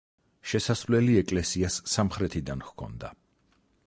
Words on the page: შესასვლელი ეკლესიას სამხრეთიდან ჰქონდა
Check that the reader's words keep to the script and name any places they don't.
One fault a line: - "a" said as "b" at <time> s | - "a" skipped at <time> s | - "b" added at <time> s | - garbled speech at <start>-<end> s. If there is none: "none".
none